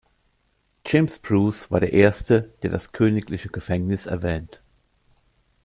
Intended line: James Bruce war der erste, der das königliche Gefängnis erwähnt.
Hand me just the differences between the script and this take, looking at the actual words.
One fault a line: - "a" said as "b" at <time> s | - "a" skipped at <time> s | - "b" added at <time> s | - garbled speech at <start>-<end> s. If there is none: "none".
none